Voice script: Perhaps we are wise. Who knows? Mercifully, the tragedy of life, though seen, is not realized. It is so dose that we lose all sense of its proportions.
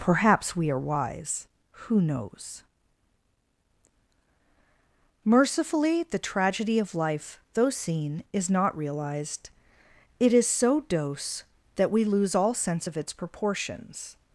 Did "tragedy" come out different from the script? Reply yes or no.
no